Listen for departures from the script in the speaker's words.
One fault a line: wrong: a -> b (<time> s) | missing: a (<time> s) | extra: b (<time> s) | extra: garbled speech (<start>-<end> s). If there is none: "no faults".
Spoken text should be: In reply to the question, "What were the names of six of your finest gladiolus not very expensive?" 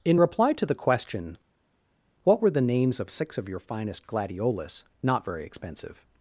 no faults